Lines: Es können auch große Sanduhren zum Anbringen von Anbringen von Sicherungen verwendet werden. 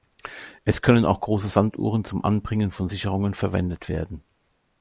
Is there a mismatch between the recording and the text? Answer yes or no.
yes